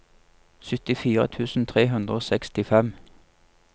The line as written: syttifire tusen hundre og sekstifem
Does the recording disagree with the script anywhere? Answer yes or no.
yes